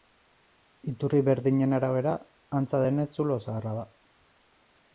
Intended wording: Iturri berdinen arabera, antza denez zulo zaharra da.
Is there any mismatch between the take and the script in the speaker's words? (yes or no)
no